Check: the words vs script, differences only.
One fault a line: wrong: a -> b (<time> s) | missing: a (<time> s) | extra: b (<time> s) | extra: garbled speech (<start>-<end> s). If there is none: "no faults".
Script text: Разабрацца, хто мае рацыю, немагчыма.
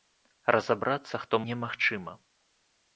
missing: мае рацыю (1.4 s)